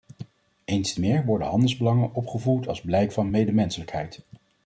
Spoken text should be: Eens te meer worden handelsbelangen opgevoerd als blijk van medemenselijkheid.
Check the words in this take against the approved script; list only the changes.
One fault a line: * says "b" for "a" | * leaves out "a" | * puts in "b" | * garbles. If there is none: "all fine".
all fine